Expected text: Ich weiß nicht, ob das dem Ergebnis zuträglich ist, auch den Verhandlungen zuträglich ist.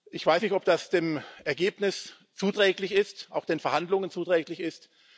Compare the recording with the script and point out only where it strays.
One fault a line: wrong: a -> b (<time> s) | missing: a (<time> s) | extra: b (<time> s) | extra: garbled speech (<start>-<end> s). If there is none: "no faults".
no faults